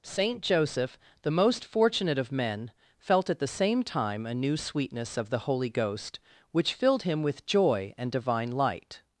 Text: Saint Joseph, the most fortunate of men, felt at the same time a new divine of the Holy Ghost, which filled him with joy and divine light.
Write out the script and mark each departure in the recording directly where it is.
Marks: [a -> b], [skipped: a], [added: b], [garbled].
Saint Joseph, the most fortunate of men, felt at the same time a new [divine -> sweetness] of the Holy Ghost, which filled him with joy and divine light.